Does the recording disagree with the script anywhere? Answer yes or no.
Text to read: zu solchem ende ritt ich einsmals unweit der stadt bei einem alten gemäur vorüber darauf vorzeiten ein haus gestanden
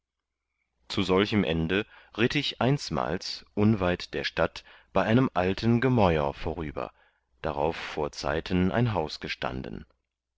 no